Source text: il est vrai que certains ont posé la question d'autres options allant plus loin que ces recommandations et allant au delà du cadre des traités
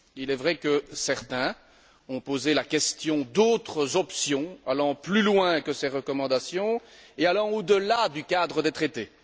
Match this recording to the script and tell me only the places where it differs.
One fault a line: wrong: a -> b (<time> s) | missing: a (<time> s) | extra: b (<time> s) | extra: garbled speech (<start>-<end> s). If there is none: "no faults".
no faults